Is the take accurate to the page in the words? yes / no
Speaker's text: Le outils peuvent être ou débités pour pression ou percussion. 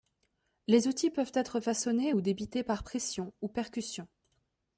no